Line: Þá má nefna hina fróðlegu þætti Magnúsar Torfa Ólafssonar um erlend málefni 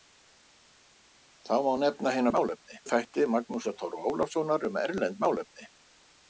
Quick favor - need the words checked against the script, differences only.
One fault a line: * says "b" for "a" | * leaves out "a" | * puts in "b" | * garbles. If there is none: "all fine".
* says "málefni" for "fróðlegu"